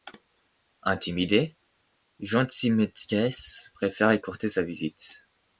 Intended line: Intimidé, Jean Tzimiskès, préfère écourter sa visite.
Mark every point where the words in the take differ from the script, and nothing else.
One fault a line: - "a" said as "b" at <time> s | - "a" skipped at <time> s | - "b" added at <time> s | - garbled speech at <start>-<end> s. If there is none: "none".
none